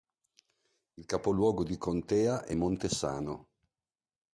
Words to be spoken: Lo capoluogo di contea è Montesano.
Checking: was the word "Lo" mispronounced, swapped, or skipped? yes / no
yes